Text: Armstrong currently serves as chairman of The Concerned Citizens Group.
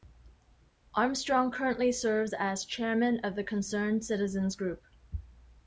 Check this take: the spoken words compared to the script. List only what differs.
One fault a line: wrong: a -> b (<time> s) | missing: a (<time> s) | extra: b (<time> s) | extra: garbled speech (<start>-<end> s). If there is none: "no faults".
no faults